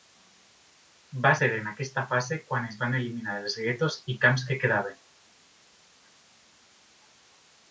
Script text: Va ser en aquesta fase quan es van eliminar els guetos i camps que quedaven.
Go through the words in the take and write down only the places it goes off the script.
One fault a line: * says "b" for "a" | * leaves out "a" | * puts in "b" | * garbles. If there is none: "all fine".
all fine